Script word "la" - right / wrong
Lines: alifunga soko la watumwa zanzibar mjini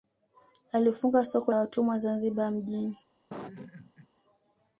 wrong